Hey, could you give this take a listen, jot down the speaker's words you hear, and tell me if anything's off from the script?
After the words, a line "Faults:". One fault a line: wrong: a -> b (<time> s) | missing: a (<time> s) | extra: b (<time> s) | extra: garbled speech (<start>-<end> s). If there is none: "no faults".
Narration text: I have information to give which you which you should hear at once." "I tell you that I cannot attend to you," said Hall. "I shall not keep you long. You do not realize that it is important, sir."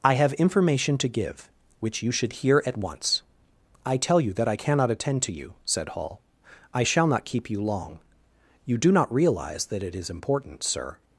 I have information to give which you should hear at once." "I tell you that I cannot attend to you," said Hall. "I shall not keep you long. You do not realize that it is important, sir."
Faults:
missing: which you (2.1 s)